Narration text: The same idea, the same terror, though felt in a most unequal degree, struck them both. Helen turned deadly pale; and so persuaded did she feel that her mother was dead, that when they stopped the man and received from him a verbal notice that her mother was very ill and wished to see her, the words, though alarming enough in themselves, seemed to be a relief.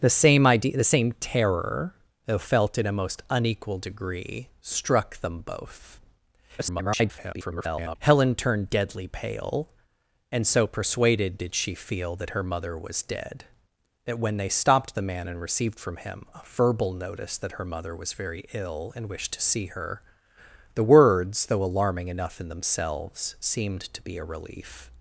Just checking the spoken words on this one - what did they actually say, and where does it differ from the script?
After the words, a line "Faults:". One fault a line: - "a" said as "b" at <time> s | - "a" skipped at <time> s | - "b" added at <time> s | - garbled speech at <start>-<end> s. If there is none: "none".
The same idea, the same terror, though felt in a most unequal degree, struck them both. [garbled] Helen turned deadly pale; and so persuaded did she feel that her mother was dead, that when they stopped the man and received from him a verbal notice that her mother was very ill and wished to see her, the words, though alarming enough in themselves, seemed to be a relief.
Faults:
- garbled speech at 6.6-8.0 s